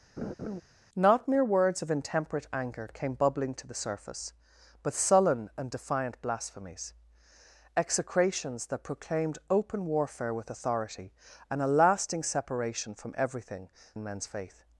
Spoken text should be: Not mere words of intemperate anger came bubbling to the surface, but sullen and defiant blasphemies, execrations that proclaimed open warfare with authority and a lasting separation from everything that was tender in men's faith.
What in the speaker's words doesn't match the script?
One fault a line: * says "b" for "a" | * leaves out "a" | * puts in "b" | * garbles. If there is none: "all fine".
* leaves out "that was tender"